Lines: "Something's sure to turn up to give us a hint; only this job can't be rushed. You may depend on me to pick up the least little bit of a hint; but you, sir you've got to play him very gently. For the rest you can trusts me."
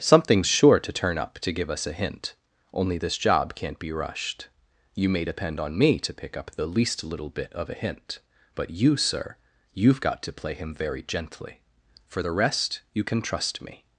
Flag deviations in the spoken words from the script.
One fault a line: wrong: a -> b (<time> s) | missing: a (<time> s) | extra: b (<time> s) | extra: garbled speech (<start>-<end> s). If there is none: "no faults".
wrong: trusts -> trust (13.2 s)